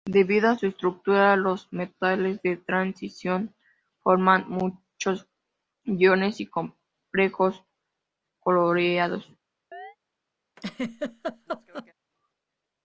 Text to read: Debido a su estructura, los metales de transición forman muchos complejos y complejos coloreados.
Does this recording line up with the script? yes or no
no